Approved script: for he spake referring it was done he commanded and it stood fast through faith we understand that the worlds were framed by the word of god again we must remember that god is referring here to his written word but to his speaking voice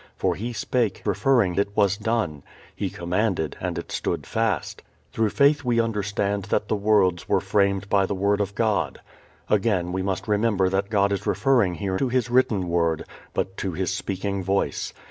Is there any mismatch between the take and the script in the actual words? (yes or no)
no